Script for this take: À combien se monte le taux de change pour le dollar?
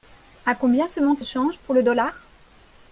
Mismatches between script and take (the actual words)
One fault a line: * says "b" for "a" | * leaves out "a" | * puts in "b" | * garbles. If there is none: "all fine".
* leaves out "le taux"